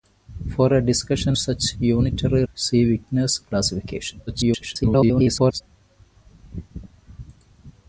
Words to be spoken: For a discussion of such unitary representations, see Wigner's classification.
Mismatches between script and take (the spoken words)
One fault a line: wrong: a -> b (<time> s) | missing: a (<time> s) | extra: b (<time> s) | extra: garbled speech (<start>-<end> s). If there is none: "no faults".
missing: of (1.4 s)
missing: representations (2.4 s)
extra: garbled speech (4.3-5.6 s)